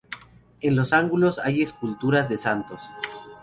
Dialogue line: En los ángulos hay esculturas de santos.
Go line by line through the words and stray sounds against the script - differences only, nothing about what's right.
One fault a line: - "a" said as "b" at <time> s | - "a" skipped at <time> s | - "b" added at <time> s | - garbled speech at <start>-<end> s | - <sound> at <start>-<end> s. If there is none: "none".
none